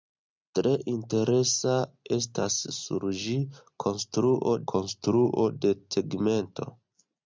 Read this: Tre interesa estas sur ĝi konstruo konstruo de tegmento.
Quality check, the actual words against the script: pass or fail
pass